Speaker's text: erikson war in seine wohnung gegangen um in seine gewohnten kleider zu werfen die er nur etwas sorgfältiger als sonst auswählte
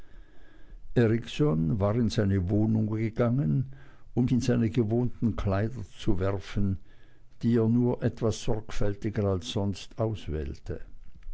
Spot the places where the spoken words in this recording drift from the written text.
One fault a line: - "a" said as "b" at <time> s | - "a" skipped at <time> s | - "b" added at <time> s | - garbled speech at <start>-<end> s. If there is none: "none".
none